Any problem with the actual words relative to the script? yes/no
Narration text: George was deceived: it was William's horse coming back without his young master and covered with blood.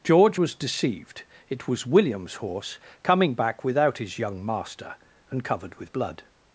no